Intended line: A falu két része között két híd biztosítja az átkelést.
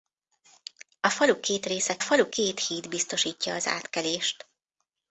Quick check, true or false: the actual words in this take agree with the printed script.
false